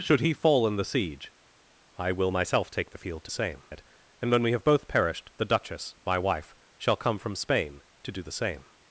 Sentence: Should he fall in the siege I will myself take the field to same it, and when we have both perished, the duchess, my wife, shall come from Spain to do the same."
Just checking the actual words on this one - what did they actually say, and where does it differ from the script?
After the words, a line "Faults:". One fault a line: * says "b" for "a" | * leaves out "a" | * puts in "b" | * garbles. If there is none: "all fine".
Should he fall in the siege I will myself take the field to same it, and when we have both perished, the duchess, my wife, shall come from Spain to do the same."
Faults:
all fine